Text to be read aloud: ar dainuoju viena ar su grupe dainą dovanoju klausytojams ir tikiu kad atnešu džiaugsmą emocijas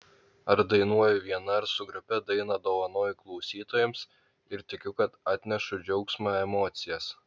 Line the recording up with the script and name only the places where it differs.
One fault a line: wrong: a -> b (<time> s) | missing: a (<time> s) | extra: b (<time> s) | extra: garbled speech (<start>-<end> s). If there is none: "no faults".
no faults